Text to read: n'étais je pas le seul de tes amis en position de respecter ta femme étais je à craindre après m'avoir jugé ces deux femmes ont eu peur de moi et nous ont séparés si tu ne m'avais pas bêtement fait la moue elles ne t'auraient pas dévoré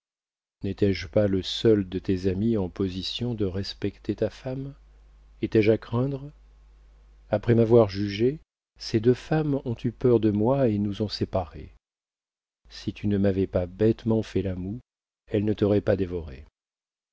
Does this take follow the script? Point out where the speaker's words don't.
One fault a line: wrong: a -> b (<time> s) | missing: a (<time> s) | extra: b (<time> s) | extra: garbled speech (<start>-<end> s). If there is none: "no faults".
no faults